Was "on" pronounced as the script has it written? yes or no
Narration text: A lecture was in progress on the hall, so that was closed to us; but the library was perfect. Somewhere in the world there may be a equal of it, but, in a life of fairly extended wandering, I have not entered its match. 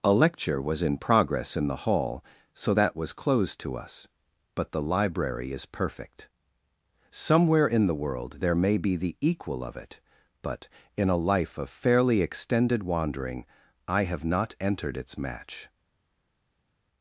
no